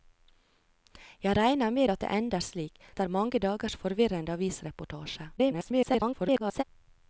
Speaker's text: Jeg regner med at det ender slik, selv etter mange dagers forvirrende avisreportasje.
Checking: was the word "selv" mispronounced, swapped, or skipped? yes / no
yes